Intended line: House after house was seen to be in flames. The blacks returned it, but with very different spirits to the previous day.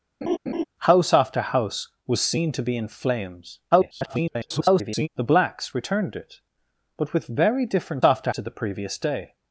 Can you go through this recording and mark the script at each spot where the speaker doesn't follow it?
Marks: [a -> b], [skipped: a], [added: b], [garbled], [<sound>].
[laugh] House after house was seen to be in flames. [garbled] The blacks returned it, but with very different [spirits -> after] to the previous day.